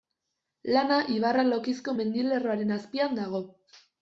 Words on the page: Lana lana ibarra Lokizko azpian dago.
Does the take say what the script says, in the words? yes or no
no